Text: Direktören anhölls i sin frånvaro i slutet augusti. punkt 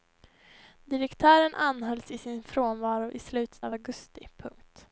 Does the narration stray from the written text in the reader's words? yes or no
yes